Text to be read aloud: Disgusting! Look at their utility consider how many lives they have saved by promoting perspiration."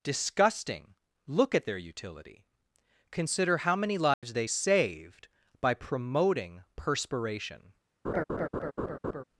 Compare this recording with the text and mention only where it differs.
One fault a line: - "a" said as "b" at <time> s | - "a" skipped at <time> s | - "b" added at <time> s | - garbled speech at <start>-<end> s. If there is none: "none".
- "have" skipped at 4.5 s